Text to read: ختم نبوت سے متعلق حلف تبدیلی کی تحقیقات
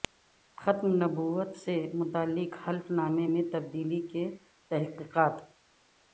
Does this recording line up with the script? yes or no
no